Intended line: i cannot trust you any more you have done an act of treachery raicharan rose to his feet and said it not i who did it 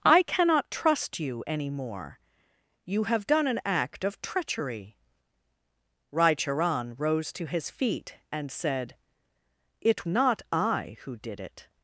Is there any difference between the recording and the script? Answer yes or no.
no